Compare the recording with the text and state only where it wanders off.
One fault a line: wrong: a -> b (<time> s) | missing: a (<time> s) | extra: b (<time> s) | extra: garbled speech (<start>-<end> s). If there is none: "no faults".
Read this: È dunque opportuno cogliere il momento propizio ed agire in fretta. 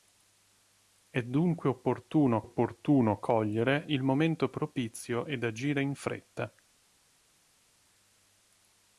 extra: opportuno (2.4 s)